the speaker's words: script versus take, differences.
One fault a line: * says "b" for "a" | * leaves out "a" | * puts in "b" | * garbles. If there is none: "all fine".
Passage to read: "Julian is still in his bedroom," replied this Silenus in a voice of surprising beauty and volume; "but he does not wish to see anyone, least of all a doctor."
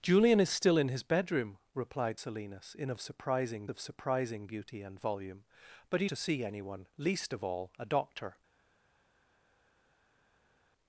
* leaves out "this"
* says "surprising" for "voice"
* leaves out "does not wish"